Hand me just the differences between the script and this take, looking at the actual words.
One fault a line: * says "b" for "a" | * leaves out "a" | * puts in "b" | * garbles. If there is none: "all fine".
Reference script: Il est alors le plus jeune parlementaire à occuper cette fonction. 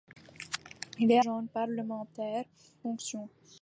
* leaves out "alors le plus"
* leaves out "à occuper cette"